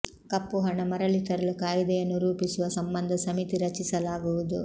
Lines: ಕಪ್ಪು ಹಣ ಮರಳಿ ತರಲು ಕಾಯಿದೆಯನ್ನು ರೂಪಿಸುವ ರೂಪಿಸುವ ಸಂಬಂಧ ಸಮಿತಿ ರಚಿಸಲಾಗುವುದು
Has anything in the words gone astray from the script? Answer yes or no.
yes